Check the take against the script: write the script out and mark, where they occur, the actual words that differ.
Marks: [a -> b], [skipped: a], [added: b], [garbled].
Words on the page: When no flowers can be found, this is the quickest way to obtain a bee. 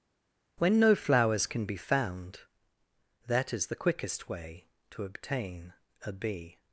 When no flowers can be found, [this -> that] is the quickest way to obtain a bee.